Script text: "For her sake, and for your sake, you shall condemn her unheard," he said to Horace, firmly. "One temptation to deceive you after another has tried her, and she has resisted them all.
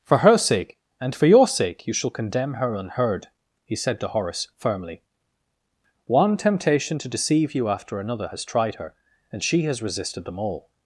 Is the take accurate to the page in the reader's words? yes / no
yes